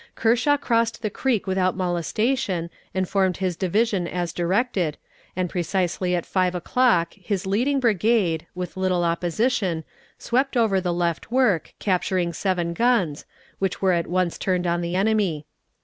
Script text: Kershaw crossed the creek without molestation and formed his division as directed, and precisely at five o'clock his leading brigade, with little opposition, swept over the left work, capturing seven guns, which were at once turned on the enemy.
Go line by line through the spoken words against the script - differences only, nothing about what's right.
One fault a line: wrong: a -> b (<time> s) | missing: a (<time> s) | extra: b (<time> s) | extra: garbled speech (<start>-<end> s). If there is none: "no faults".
no faults